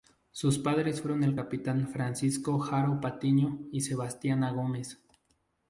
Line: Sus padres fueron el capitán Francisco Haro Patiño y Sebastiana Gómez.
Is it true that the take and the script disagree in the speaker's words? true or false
false